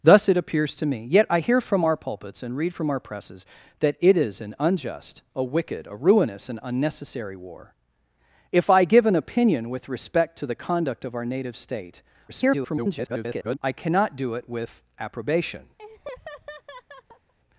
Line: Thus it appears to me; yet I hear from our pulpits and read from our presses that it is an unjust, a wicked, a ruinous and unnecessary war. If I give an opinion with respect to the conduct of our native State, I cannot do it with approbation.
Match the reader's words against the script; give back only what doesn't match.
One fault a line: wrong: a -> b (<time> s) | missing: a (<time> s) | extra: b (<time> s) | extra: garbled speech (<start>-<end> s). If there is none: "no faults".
extra: garbled speech (12.3-13.6 s)